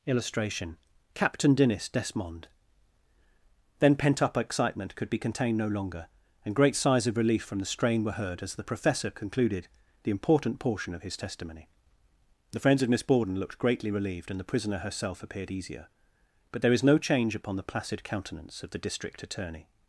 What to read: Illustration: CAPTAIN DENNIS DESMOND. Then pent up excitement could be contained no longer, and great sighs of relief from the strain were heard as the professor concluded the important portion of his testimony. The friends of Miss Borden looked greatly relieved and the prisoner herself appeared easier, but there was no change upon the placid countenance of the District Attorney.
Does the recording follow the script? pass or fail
fail